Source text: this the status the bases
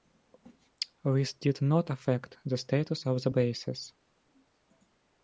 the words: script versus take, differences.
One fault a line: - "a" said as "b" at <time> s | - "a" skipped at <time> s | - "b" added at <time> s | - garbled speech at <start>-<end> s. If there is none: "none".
- "did not affect" added at 1.3 s
- "of" added at 3.0 s